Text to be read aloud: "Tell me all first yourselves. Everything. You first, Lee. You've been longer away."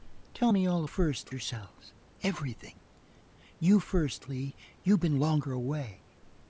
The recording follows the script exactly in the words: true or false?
true